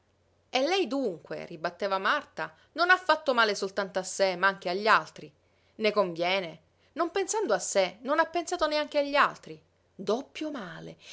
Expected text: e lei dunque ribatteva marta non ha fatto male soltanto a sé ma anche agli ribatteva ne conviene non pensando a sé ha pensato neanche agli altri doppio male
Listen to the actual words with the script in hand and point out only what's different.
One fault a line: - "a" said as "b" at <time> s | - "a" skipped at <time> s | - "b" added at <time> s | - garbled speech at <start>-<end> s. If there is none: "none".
- "ribatteva" said as "altri" at 4.9 s
- "non" added at 8.0 s